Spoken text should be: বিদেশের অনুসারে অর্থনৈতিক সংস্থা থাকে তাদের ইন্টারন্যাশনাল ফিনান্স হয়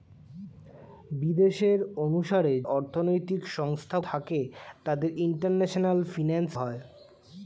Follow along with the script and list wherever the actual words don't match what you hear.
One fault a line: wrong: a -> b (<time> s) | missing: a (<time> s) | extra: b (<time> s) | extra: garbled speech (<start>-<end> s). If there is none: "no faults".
no faults